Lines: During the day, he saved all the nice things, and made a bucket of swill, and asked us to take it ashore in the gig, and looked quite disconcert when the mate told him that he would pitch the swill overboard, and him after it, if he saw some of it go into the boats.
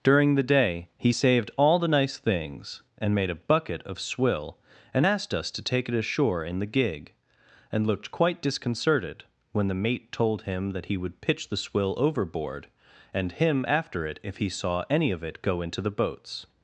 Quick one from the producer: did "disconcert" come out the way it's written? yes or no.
no